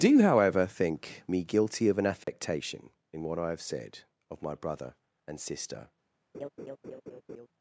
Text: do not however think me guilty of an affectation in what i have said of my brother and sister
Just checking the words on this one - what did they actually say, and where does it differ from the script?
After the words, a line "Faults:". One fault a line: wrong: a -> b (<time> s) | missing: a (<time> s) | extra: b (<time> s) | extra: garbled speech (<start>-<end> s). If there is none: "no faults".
do however think me guilty of an affectation in what i have said of my brother and sister
Faults:
missing: not (0.2 s)